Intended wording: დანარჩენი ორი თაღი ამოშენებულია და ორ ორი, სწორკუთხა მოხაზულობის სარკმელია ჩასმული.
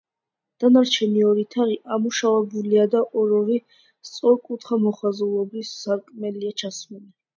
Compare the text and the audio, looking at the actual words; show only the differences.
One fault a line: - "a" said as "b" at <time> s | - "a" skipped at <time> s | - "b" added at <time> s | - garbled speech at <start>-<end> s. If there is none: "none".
none